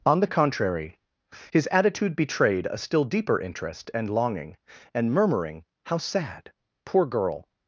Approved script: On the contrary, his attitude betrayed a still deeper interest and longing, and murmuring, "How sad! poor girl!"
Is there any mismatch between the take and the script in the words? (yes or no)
no